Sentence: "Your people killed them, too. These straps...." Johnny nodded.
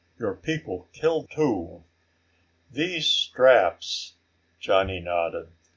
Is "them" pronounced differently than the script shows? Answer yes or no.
yes